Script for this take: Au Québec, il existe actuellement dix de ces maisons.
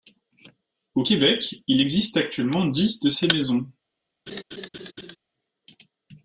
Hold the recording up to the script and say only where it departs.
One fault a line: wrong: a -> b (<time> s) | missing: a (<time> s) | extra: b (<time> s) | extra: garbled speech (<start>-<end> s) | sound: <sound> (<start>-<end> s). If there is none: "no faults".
sound: laugh (4.3-5.2 s)